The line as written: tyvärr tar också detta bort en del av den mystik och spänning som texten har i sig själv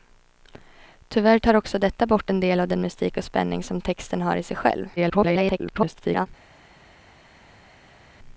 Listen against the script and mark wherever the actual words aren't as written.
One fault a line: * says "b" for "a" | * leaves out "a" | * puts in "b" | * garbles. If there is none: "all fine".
* garbles